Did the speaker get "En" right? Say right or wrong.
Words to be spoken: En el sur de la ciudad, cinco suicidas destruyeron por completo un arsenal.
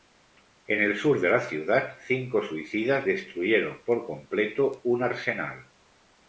right